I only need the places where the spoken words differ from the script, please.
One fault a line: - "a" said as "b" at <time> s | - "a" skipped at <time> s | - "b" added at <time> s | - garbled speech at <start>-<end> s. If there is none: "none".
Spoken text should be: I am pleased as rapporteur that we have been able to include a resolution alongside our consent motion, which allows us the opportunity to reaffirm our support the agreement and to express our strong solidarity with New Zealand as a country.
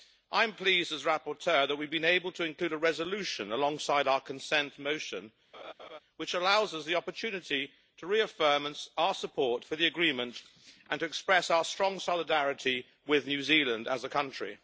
- "for" added at 9.6 s